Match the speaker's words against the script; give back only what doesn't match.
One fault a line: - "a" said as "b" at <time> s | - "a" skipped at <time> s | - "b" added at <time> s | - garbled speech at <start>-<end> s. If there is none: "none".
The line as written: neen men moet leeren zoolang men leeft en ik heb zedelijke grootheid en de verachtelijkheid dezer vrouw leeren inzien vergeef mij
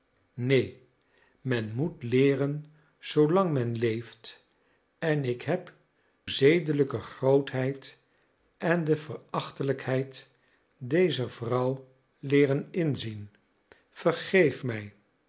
none